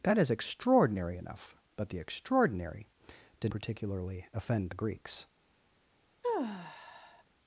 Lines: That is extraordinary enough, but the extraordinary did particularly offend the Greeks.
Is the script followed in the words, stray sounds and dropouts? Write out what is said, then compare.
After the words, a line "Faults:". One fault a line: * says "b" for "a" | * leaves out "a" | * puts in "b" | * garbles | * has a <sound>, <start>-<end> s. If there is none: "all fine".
That is extraordinary enough, but the extraordinary did particularly offend the Greeks.
Faults:
* has a sigh, 6.2-7.2 s